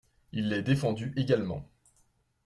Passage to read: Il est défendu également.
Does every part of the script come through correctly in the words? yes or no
yes